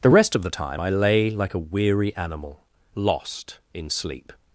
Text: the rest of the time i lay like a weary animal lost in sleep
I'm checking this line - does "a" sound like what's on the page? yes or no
yes